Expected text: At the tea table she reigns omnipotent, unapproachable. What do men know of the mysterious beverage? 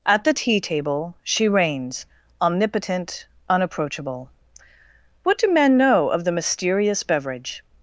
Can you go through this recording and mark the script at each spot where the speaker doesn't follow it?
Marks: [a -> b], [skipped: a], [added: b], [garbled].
At the tea table she reigns omnipotent, unapproachable. What do men know of the mysterious beverage?